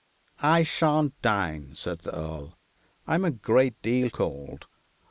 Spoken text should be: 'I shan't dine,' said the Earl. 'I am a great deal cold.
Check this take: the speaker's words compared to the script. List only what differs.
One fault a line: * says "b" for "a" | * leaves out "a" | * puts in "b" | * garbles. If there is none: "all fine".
all fine